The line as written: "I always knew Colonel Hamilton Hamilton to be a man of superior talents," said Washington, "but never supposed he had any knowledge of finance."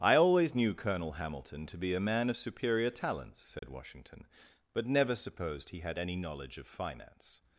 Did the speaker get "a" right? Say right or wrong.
right